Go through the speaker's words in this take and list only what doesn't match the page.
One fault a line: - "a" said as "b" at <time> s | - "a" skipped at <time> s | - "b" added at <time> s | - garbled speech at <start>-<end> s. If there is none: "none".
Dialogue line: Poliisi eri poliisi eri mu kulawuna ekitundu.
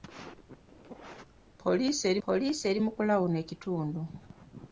none